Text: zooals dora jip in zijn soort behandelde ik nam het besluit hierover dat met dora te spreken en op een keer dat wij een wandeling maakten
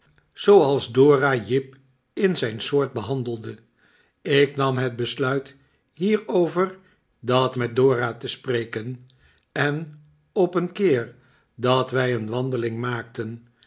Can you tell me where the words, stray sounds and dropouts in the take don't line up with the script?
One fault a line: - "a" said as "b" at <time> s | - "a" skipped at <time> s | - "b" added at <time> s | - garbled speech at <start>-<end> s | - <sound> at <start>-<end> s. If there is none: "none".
none